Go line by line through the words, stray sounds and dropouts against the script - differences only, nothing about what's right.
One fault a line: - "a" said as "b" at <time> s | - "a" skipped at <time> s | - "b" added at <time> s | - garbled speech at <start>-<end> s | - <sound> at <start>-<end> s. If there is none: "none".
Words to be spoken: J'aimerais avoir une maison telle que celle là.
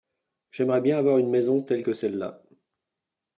- "bien" added at 0.8 s